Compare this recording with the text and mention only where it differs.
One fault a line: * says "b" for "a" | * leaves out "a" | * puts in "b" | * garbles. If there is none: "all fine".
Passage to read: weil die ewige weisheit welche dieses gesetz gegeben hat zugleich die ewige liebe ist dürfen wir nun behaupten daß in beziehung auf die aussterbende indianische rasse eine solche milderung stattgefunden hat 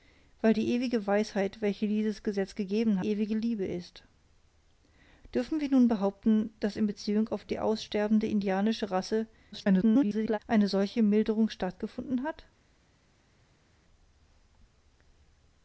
* leaves out "hat zugleich die"
* garbles